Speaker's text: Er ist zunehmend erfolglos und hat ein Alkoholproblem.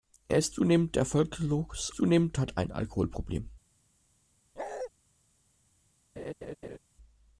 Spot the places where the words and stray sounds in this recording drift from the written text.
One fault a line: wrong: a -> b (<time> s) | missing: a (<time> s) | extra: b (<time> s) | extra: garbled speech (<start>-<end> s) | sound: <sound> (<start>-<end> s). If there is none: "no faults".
wrong: und -> zunehmend (1.9 s)
sound: bark (4.6-4.9 s)
sound: laugh (6.2-6.8 s)